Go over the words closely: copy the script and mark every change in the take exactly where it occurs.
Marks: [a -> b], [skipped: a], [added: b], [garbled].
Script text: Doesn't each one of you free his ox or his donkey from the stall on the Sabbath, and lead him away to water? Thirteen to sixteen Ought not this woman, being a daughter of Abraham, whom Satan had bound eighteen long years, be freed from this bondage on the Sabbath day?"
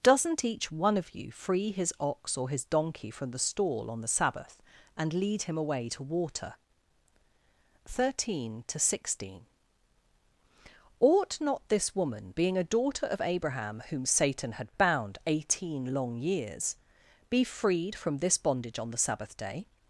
Doesn't each one of you free his ox or his donkey from the stall on the Sabbath, and lead him away to water? Thirteen to sixteen Ought not this woman, being a daughter of Abraham, whom Satan had bound eighteen long years, be freed from this bondage on the Sabbath day?"